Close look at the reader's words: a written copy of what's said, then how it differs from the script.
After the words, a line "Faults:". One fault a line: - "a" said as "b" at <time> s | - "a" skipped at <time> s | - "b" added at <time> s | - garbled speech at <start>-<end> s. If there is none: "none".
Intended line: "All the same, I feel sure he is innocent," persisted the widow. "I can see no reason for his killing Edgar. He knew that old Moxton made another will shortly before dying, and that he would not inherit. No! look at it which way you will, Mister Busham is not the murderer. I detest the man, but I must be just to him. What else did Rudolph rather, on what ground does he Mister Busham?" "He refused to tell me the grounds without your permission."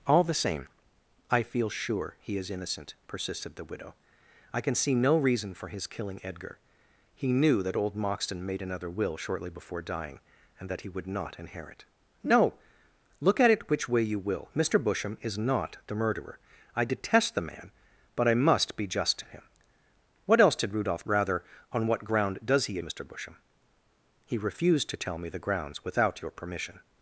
"All the same, I feel sure he is innocent," persisted the widow. "I can see no reason for his killing Edgar. He knew that old Moxton made another will shortly before dying, and that he would not inherit. No! look at it which way you will, Mister Busham is not the murderer. I detest the man, but I must be just to him. What else did Rudolph rather, on what ground does he Mister Busham?" "He refused to tell me the grounds without your permission."
Faults:
none